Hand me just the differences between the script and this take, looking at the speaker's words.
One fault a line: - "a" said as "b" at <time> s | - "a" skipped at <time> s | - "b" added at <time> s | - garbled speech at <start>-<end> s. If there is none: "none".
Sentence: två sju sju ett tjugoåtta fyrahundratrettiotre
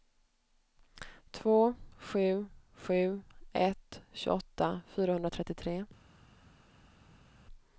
none